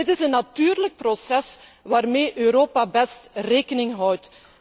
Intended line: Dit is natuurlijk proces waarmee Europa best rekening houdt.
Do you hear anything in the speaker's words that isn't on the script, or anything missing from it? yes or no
yes